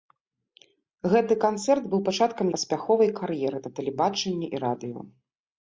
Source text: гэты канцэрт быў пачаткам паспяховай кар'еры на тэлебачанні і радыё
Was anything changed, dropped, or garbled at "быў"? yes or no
no